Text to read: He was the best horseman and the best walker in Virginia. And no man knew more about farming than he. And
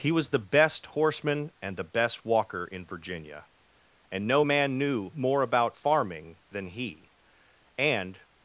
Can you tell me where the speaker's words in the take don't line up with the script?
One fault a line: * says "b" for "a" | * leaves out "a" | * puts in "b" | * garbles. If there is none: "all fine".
all fine